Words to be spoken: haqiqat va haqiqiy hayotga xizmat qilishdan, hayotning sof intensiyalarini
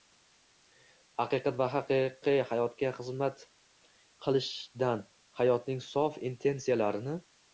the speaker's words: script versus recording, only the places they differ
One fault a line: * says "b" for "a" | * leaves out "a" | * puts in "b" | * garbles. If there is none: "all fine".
all fine